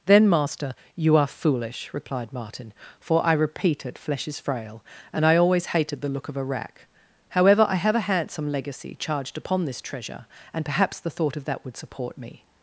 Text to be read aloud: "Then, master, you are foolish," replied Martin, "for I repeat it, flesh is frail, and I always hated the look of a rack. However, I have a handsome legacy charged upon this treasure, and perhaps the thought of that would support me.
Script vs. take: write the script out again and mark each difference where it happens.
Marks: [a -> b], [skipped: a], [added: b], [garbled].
"Then, master, you are foolish," replied Martin, "for I repeat it, flesh is frail, and I always hated the look of a rack. However, I have a handsome legacy charged upon this treasure, and perhaps the thought of that would support me.